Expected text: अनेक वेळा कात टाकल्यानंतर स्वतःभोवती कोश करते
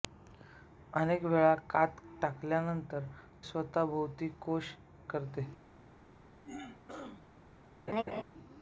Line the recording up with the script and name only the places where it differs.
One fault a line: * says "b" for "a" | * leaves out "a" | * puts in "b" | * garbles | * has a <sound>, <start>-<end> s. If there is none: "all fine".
* has a throat clearing, 6.4-7.3 s
* has a laugh, 7.9-8.2 s